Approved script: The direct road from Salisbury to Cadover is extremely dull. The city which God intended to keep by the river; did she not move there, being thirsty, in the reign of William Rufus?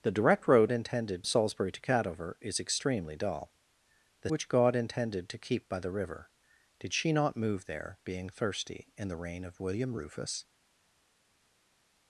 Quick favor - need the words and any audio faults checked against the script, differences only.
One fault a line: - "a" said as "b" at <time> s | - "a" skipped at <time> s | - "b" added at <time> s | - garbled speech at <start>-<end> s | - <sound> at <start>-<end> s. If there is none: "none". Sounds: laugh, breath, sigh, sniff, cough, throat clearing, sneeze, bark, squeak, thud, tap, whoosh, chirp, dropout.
- "from" said as "intended" at 0.7 s
- "city" skipped at 4.3 s